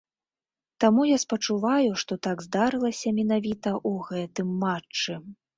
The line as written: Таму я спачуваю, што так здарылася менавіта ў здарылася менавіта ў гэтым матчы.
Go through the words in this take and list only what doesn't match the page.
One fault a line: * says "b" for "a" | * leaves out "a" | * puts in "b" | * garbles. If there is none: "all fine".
* leaves out "здарылася менавіта ў"